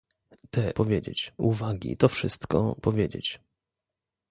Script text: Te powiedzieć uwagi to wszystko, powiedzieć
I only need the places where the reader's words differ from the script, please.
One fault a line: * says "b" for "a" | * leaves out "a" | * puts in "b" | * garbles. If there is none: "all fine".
all fine